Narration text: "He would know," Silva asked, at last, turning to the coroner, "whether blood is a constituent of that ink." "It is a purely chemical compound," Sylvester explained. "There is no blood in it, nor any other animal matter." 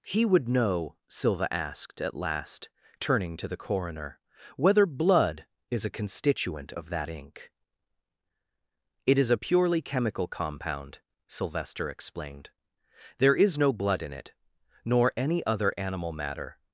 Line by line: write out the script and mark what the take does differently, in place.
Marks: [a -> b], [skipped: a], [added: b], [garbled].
"He would know," Silva asked, at last, turning to the coroner, "whether blood is a constituent of that ink." "It is a purely chemical compound," Sylvester explained. "There is no blood in it, nor any other animal matter."